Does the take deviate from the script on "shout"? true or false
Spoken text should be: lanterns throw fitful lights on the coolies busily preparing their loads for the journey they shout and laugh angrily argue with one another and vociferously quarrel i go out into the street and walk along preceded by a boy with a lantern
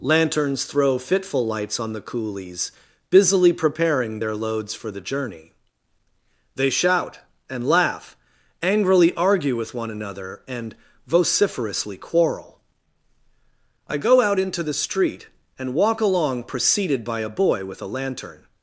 false